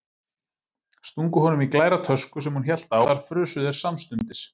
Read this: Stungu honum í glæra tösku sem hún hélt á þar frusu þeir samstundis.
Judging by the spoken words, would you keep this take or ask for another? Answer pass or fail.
pass